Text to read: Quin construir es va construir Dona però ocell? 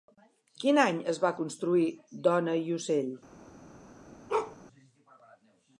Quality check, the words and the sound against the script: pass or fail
fail